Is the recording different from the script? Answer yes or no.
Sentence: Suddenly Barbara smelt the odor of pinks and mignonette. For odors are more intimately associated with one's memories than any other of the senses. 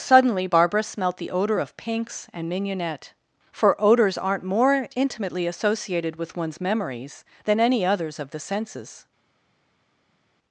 yes